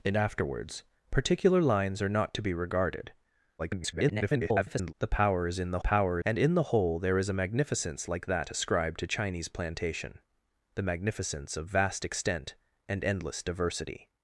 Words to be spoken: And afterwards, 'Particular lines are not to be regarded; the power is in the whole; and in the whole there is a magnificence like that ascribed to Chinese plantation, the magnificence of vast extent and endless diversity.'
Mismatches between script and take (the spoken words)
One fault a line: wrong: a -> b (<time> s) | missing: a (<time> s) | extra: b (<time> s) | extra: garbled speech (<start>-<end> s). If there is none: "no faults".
extra: garbled speech (3.6-4.9 s)
wrong: whole -> power (5.8 s)